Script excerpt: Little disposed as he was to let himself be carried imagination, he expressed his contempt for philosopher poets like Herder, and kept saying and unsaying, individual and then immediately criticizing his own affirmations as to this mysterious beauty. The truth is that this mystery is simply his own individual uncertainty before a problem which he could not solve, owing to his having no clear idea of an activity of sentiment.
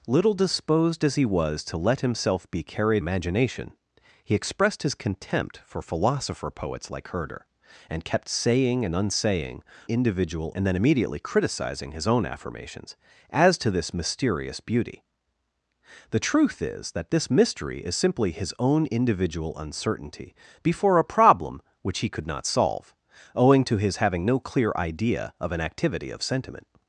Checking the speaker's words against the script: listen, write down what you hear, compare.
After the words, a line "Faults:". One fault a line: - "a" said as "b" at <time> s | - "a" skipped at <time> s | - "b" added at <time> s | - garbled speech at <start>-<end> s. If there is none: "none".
Little disposed as he was to let himself be carried imagination, he expressed his contempt for philosopher poets like Herder, and kept saying and unsaying, individual and then immediately criticizing his own affirmations as to this mysterious beauty. The truth is that this mystery is simply his own individual uncertainty before a problem which he could not solve, owing to his having no clear idea of an activity of sentiment.
Faults:
none